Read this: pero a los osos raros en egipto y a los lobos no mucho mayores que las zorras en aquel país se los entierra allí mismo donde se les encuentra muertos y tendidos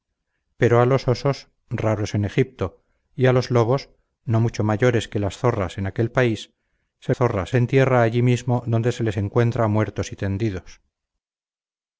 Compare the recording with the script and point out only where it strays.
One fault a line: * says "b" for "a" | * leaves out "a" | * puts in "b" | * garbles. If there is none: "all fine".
* says "zorras" for "los"